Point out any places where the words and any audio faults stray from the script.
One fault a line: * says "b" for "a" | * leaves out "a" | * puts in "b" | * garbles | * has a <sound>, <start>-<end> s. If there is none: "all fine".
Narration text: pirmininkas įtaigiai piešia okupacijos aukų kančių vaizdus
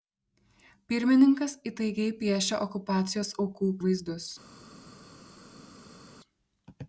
* leaves out "kančių"